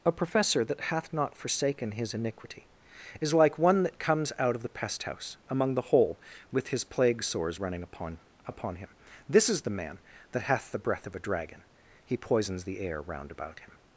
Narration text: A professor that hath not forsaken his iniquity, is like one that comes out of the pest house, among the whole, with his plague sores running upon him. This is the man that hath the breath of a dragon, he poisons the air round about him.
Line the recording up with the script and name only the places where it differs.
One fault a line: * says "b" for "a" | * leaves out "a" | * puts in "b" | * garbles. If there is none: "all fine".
* puts in "upon"